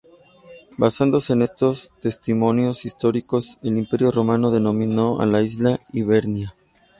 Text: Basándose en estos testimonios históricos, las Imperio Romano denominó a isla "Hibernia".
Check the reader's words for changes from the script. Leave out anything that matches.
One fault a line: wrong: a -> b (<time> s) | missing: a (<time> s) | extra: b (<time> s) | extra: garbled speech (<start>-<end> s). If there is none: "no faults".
wrong: las -> el (3.6 s)
extra: la (5.2 s)